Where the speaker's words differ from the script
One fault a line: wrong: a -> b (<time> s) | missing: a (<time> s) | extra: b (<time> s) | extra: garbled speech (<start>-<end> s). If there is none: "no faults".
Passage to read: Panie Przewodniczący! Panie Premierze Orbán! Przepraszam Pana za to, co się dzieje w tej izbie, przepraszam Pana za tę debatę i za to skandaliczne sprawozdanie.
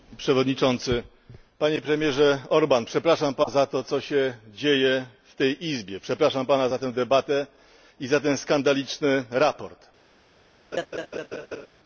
no faults